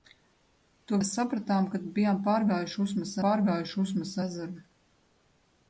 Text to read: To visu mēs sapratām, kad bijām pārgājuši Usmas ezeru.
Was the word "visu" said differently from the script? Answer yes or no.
yes